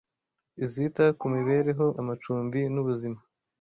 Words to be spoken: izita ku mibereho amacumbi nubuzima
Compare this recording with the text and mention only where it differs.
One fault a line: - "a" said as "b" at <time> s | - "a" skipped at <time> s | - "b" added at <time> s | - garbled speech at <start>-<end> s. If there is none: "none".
none